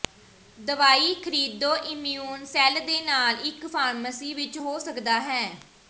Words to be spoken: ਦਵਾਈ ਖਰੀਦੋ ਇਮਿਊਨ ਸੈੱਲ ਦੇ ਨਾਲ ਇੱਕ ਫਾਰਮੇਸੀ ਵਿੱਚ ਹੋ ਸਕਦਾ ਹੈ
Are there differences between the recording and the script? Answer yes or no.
no